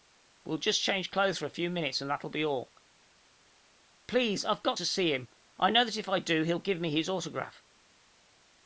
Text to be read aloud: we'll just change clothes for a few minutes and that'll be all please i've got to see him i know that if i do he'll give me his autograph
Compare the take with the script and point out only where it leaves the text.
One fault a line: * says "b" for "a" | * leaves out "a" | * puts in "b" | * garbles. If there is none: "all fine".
all fine